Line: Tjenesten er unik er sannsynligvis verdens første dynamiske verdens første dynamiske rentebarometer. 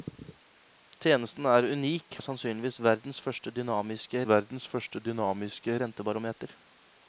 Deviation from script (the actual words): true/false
false